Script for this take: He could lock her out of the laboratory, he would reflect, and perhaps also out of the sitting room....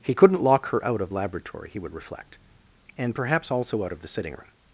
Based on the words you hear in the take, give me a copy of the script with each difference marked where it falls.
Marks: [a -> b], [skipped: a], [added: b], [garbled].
He [could -> couldn't] lock her out of [skipped: the] laboratory, he would reflect, and perhaps also out of the sitting room....